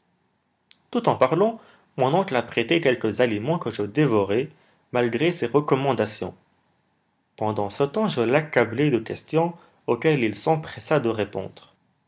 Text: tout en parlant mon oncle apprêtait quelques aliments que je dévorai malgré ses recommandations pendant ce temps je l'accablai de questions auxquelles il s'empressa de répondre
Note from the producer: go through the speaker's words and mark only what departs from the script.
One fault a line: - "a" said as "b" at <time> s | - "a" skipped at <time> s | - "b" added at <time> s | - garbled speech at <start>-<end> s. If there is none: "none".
none